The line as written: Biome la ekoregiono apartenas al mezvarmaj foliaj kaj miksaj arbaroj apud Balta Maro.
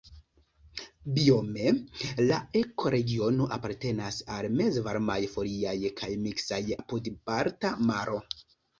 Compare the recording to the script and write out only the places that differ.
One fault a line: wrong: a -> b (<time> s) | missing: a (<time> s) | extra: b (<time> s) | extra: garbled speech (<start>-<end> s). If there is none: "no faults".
missing: arbaroj (6.6 s)